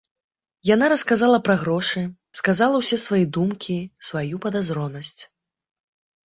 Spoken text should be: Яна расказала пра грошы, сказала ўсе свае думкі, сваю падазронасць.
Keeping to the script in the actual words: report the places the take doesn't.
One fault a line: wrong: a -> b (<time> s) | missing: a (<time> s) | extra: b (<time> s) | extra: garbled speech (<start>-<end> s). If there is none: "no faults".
no faults